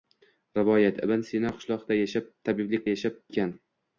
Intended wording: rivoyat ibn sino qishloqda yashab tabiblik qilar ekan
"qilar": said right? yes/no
no